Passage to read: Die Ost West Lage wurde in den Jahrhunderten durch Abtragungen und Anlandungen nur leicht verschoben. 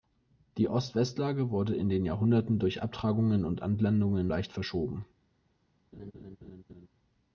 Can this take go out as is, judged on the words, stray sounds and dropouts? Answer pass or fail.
fail